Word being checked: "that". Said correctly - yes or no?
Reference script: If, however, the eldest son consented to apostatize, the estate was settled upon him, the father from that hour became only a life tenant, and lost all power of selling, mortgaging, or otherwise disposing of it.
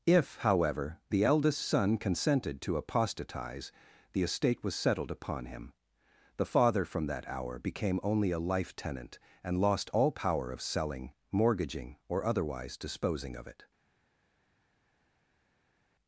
yes